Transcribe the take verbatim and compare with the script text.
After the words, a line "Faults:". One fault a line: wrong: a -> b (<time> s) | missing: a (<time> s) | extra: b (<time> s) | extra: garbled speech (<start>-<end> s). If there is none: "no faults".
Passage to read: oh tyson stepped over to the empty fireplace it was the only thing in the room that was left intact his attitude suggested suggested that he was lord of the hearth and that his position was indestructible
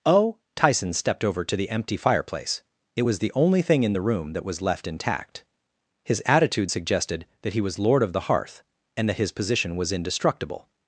oh tyson stepped over to the empty fireplace it was the only thing in the room that was left intact his attitude suggested that he was lord of the hearth and that his position was indestructible
Faults:
missing: suggested (7.3 s)